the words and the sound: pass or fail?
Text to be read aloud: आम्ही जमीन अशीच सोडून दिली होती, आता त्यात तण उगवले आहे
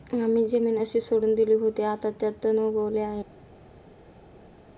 pass